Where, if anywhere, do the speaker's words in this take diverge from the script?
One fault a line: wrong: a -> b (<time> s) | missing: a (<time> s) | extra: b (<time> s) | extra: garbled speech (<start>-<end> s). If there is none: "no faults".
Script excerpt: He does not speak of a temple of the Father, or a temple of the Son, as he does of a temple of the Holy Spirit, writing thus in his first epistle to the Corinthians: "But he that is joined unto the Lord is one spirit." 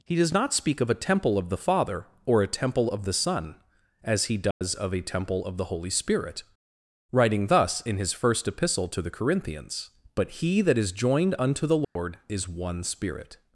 no faults